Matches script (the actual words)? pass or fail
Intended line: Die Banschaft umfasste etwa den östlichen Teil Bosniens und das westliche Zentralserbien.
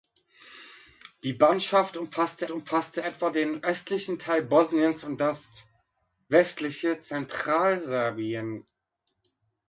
fail